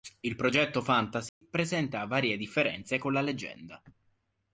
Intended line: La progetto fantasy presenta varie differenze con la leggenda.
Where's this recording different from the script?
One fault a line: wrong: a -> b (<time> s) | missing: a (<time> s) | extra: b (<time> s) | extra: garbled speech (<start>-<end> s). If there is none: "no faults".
wrong: La -> Il (0.2 s)